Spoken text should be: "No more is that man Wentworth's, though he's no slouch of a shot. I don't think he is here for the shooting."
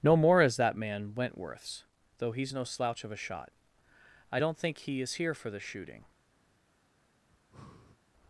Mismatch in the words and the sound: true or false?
true